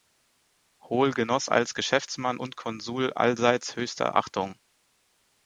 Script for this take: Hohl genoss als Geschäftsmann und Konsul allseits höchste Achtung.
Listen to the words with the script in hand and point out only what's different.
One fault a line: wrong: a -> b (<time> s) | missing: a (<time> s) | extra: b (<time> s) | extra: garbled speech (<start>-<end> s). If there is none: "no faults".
no faults